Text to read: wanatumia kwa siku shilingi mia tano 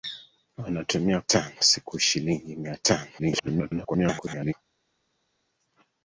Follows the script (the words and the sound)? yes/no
no